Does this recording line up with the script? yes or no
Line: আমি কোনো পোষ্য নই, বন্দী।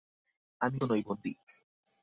no